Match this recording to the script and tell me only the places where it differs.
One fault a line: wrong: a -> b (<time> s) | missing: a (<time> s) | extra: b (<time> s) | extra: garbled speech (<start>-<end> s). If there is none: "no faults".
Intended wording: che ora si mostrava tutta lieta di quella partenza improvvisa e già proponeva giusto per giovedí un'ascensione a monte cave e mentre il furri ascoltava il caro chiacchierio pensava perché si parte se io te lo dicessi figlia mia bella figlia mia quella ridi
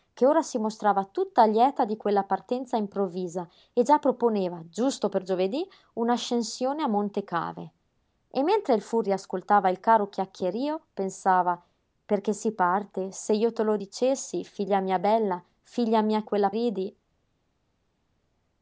no faults